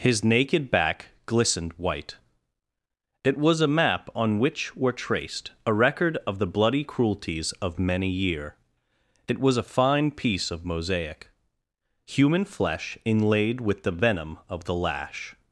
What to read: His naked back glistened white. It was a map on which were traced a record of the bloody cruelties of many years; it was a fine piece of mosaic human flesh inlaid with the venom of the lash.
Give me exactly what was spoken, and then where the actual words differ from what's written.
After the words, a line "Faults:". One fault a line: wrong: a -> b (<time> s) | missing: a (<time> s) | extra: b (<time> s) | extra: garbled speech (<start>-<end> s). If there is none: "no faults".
His naked back glistened white. It was a map on which were traced a record of the bloody cruelties of many year; it was a fine piece of mosaic human flesh inlaid with the venom of the lash.
Faults:
wrong: years -> year (8.1 s)